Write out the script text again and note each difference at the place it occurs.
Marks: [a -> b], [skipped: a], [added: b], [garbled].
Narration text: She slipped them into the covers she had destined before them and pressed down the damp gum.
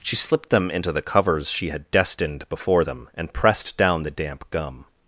She slipped them into the covers she had destined before them and pressed down the damp gum.